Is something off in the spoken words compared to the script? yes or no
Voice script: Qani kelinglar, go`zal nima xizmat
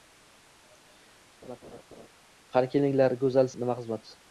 no